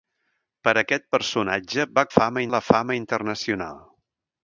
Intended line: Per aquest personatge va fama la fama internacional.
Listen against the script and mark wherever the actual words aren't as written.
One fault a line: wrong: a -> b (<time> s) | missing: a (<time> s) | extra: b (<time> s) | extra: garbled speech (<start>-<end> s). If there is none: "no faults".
no faults